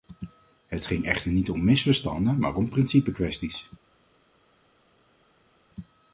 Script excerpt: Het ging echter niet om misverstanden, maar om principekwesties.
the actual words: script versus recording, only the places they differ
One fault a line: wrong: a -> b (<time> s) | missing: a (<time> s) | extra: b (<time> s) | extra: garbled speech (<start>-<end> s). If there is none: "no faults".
no faults